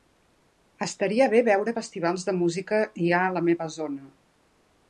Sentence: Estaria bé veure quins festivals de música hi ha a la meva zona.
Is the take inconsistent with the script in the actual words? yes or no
yes